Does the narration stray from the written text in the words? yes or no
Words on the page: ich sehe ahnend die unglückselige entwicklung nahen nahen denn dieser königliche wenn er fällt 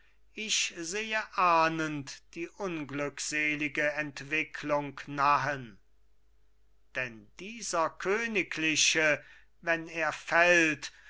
yes